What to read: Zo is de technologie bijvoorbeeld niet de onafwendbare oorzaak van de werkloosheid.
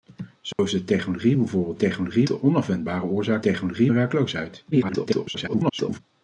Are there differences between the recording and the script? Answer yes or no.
yes